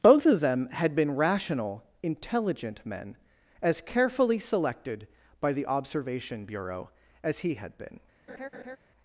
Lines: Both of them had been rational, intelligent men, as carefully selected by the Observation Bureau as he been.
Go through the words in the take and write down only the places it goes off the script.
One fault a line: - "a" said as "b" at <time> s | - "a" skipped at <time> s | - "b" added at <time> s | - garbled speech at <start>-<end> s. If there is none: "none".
- "had" added at 7.5 s